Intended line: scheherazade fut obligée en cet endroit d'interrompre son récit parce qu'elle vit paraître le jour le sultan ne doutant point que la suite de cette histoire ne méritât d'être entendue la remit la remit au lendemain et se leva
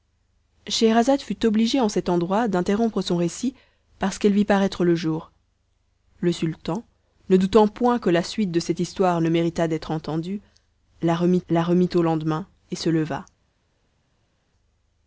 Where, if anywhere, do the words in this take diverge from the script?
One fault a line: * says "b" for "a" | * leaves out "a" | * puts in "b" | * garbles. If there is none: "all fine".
all fine